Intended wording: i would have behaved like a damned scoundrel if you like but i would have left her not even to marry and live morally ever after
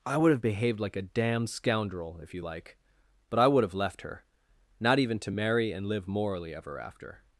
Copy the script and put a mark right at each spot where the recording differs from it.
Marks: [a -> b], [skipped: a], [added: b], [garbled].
i would have behaved like a damned scoundrel if you like but i would have left her not even to marry and live morally ever after